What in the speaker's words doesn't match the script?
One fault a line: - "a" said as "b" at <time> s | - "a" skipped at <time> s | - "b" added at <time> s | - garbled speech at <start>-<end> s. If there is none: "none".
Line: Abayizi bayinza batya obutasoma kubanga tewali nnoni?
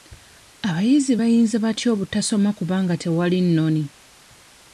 none